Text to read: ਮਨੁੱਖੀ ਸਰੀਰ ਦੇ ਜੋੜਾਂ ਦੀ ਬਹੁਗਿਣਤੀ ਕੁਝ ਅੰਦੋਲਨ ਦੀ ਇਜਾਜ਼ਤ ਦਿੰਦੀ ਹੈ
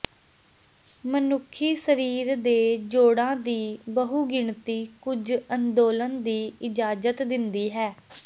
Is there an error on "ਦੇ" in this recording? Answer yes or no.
no